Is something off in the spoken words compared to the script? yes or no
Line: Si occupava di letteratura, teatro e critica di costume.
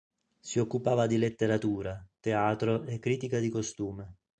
no